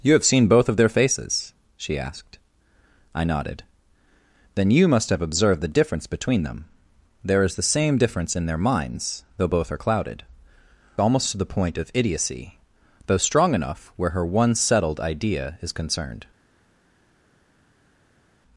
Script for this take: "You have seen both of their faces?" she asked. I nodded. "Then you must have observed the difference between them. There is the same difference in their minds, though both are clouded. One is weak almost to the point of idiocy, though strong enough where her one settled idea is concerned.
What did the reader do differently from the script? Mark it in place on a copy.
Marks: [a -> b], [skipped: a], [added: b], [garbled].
"You have seen both of their faces?" she asked. I nodded. "Then you must have observed the difference between them. There is the same difference in their minds, though both are clouded. [skipped: One is weak] almost to the point of idiocy, though strong enough where her one settled idea is concerned.